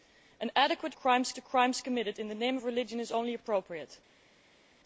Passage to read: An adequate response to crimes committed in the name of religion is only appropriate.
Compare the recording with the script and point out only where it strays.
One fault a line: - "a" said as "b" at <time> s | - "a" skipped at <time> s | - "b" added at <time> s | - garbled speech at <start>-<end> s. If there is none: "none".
- "response" said as "crimes" at 0.9 s